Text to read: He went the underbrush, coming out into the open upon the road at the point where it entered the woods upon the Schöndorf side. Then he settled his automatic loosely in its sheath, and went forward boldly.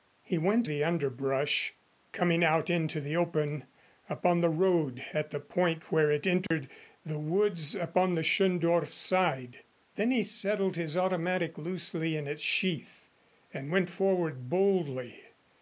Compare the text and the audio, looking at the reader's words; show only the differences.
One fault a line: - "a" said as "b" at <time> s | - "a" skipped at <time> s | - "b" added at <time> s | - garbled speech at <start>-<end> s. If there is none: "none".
none